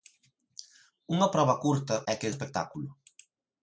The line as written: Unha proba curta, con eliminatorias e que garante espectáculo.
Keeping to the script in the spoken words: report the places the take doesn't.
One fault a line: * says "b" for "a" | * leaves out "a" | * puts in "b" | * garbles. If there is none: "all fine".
* leaves out "con eliminatorias"
* leaves out "garante"